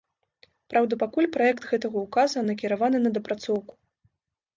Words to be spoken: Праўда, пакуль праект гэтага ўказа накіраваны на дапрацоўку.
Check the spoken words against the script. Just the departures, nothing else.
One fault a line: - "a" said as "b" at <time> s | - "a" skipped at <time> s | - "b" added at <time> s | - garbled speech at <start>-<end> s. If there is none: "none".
none